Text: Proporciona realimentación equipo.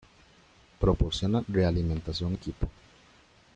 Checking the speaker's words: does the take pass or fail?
pass